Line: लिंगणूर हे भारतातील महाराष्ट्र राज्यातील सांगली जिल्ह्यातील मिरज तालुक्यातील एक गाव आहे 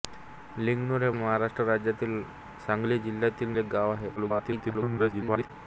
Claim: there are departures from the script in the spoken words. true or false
true